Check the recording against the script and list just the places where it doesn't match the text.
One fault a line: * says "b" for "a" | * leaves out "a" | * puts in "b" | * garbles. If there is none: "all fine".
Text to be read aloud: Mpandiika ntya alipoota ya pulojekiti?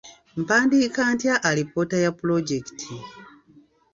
all fine